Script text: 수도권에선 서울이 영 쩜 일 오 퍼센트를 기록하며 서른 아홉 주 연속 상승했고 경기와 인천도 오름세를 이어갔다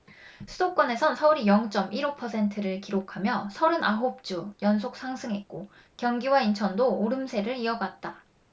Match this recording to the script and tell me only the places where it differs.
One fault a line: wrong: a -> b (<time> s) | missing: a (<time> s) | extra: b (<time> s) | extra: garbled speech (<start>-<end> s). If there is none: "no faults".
no faults